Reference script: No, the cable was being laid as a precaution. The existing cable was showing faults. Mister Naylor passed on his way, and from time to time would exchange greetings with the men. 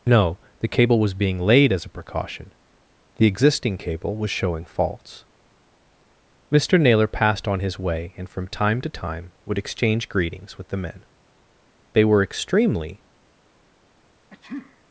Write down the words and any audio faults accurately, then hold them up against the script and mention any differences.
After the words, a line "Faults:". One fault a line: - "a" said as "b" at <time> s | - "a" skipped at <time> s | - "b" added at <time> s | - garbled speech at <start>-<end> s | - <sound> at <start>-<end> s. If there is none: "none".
No, the cable was being laid as a precaution. The existing cable was showing faults. Mister Naylor passed on his way, and from time to time would exchange greetings with the men. They were extremely
Faults:
- "They were extremely" added at 11.9 s
- sneeze at 14.3-14.8 s